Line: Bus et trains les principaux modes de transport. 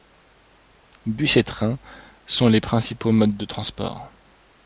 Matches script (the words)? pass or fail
fail